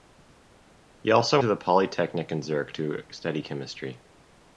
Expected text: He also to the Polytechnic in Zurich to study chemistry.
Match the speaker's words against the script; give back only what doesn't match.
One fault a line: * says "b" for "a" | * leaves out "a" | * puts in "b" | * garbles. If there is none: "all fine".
all fine